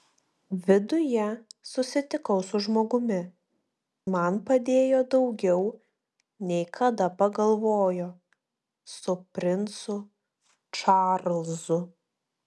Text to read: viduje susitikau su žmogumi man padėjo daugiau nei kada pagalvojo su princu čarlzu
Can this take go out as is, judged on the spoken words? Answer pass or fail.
pass